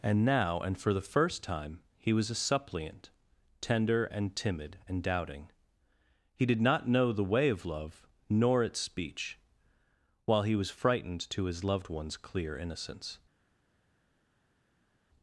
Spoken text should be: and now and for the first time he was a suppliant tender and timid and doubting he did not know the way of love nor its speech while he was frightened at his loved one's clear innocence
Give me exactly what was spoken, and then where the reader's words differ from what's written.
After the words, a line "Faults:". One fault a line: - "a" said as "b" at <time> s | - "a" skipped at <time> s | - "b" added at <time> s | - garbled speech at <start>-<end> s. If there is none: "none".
and now and for the first time he was a suppliant tender and timid and doubting he did not know the way of love nor its speech while he was frightened to his loved one's clear innocence
Faults:
- "at" said as "to" at 11.3 s